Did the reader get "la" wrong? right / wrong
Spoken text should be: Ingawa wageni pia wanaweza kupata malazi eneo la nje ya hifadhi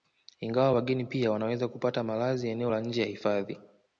right